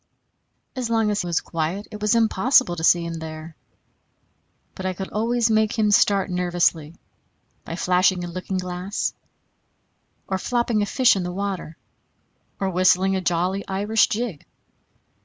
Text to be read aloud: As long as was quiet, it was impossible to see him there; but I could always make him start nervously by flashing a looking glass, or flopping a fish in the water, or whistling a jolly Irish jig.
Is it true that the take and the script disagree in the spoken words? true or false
false